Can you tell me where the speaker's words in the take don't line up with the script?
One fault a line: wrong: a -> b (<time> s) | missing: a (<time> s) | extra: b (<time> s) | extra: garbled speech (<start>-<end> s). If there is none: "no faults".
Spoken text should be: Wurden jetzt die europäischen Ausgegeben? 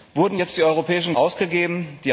no faults